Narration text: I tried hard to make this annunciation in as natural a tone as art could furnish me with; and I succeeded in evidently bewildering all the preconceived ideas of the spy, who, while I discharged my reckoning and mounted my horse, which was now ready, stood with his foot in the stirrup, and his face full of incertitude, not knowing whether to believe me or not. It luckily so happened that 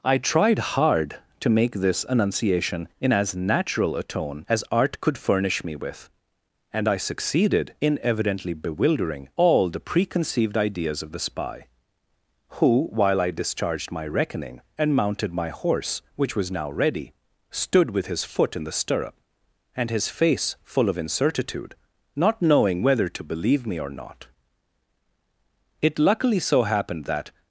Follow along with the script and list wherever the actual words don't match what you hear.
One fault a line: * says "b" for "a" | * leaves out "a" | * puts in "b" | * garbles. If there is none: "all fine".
all fine